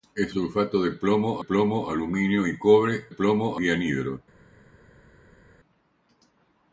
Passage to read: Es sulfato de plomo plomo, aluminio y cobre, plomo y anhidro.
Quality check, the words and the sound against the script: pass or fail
pass